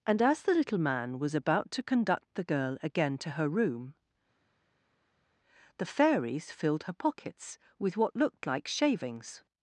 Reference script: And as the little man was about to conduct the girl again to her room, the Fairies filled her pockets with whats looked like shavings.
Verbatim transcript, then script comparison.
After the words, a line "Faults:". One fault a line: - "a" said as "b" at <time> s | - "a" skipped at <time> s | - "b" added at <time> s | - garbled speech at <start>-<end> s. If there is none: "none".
And as the little man was about to conduct the girl again to her room, the Fairies filled her pockets with what looked like shavings.
Faults:
- "whats" said as "what" at 8.0 s